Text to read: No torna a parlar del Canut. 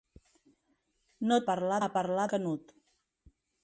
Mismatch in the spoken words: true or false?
true